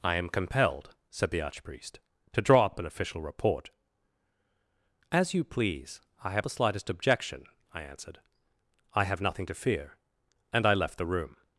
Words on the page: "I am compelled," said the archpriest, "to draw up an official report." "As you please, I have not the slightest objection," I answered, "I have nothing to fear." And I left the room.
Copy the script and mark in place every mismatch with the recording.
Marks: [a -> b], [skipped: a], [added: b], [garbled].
"I am compelled," said the archpriest, "to draw up [added: up] an official report." "As you please, I have [skipped: not] the slightest objection," I answered, "I have nothing to fear." And I left the room.